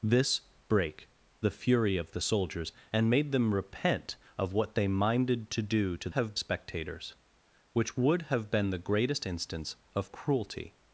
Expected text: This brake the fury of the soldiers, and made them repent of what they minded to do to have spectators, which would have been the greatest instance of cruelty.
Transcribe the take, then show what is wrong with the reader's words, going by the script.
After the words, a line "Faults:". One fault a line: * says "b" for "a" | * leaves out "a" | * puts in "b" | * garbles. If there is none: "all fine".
This brake the fury of the soldiers, and made them repent of what they minded to do to have spectators, which would have been the greatest instance of cruelty.
Faults:
all fine